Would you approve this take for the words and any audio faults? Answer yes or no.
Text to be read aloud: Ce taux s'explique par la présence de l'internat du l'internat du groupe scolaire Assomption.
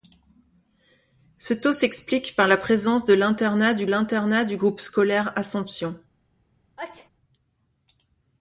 no